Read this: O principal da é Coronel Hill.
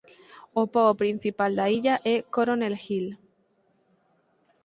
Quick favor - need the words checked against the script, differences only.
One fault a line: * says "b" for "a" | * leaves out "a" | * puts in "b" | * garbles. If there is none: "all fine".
* puts in "pobo"
* puts in "illa"